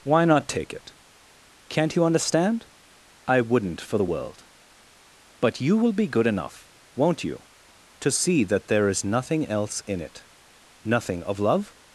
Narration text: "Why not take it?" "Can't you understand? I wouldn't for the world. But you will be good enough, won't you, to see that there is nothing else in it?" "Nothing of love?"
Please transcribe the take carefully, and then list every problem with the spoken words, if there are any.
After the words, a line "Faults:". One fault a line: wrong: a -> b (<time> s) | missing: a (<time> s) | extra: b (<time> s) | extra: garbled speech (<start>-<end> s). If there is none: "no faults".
"Why not take it?" "Can't you understand? I wouldn't for the world. But you will be good enough, won't you, to see that there is nothing else in it?" "Nothing of love?"
Faults:
no faults